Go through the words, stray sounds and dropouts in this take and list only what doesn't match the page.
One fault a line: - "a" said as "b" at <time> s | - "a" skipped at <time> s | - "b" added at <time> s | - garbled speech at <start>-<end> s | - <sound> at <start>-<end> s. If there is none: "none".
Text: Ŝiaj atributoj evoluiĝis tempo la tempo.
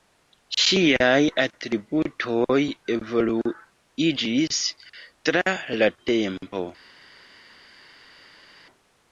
- "tempo" said as "tra" at 5.3 s